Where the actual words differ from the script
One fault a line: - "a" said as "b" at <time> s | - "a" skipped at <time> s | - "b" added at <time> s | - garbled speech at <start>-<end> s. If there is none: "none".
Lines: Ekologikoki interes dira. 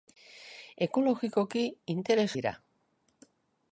none